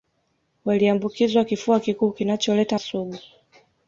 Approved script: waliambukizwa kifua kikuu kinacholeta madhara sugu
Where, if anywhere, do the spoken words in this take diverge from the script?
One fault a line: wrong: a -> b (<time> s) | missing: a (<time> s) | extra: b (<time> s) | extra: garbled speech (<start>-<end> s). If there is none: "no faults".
missing: madhara (2.8 s)